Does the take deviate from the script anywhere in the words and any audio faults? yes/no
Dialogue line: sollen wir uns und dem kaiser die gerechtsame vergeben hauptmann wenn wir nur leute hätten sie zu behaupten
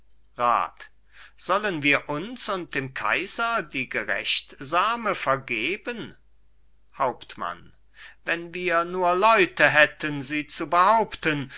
no